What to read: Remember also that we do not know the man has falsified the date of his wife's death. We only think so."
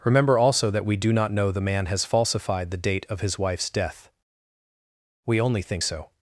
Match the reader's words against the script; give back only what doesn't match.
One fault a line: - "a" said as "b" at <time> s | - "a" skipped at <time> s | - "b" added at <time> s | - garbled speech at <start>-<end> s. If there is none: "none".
none